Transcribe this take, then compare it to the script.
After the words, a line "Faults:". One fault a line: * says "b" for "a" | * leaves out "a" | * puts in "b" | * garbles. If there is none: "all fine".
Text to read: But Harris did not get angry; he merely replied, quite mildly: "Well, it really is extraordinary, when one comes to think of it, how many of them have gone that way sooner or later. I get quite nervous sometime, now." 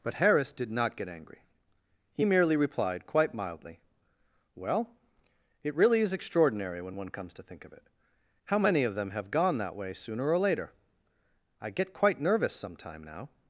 But Harris did not get angry; he merely replied, quite mildly: "Well, it really is extraordinary, when one comes to think of it, how many of them have gone that way sooner or later. I get quite nervous sometime, now."
Faults:
all fine